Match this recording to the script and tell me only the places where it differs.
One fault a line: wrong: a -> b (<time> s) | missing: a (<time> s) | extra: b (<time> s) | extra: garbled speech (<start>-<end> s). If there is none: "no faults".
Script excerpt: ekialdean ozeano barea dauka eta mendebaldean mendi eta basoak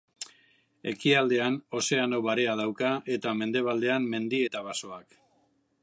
no faults